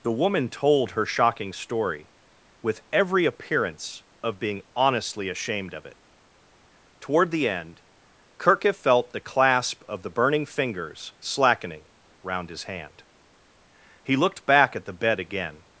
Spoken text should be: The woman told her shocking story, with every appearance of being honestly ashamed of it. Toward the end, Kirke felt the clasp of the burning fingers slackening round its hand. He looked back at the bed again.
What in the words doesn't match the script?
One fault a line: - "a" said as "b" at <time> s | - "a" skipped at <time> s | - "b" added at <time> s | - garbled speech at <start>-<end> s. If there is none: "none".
- "its" said as "his" at 12.5 s